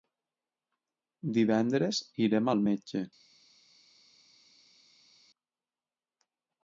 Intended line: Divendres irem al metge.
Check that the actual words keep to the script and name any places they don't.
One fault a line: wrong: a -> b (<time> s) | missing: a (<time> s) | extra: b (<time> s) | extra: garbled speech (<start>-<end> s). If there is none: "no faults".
no faults